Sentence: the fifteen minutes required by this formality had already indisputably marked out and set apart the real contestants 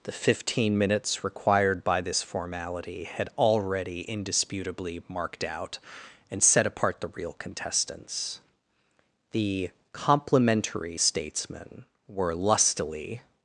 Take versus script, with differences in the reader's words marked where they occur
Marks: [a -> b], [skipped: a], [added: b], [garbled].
the fifteen minutes required by this formality had already indisputably marked out and set apart the real contestants [added: the complimentary statesmen were lustily]